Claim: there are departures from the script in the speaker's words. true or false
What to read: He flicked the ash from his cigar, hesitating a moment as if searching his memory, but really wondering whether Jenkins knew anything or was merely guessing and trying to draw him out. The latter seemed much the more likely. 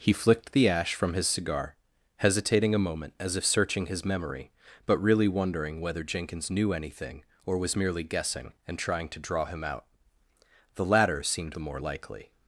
true